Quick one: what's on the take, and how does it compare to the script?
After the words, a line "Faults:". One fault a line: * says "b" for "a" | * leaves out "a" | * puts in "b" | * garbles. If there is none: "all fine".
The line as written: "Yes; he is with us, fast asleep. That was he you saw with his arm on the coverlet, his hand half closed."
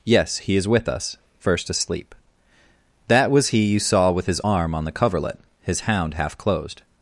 "Yes; he is with us, first asleep. That was he you saw with his arm on the coverlet, his hound half closed."
Faults:
* says "first" for "fast"
* says "hound" for "hand"